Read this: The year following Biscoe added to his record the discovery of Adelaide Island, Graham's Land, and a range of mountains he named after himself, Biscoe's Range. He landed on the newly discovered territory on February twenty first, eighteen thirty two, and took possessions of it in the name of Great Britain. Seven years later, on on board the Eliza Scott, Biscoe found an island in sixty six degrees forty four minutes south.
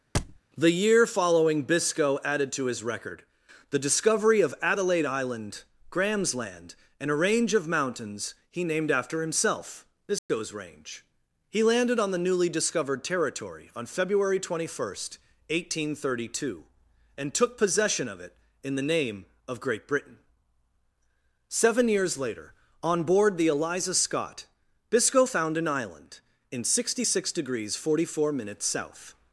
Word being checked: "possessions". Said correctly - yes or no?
no